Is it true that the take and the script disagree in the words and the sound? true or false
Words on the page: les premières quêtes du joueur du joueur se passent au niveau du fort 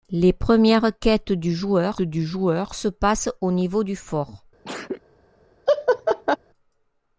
true